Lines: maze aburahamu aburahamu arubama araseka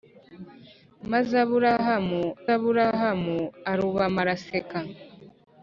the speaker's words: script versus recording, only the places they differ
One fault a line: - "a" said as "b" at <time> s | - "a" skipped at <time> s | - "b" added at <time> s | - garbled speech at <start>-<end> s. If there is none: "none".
none